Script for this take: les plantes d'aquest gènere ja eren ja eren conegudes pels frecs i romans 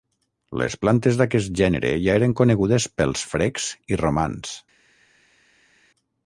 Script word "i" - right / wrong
right